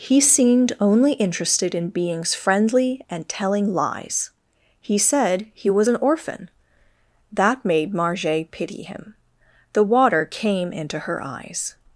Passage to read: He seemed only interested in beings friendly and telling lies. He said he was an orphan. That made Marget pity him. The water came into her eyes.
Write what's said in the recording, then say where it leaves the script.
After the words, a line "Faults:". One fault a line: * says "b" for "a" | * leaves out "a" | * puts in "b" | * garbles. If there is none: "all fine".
He seemed only interested in beings friendly and telling lies. He said he was an orphan. That made Marget pity him. The water came into her eyes.
Faults:
all fine